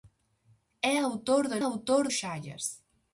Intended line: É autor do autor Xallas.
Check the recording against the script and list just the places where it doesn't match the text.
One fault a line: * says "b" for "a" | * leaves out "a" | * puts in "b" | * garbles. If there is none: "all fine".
all fine